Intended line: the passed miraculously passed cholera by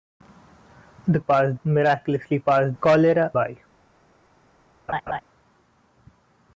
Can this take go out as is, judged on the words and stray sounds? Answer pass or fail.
fail